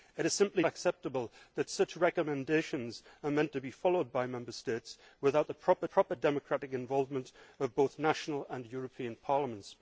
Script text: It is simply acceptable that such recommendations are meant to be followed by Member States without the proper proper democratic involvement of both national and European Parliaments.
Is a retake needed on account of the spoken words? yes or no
no